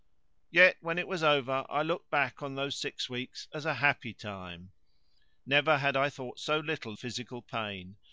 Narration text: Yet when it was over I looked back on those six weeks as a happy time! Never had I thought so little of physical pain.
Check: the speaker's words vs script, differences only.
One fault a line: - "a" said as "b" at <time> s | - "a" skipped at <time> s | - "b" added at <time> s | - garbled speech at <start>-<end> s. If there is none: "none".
- "of" skipped at 7.0 s